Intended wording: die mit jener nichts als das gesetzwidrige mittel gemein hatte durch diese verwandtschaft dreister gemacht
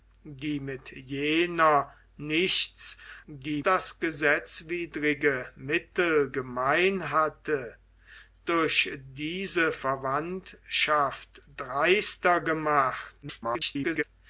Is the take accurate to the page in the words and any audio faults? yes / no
no